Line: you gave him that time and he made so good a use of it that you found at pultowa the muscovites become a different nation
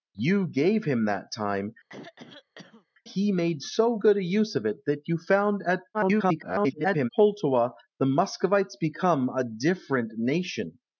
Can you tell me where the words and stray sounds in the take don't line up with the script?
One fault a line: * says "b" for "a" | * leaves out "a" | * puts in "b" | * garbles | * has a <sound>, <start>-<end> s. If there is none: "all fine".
* leaves out "and"
* has a throat clearing, 1.9-2.9 s
* garbles